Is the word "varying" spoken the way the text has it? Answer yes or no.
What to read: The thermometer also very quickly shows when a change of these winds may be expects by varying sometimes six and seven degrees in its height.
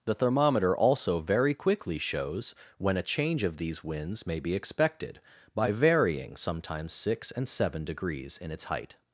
yes